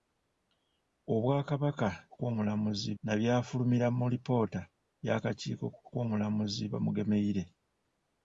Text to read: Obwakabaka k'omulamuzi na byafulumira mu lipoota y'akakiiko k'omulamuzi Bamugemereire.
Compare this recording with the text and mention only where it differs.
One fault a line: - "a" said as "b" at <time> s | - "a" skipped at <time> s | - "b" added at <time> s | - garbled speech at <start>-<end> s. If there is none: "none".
none